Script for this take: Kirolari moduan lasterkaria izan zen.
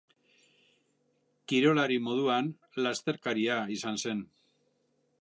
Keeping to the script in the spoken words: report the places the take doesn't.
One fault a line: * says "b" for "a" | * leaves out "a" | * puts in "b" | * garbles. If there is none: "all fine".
all fine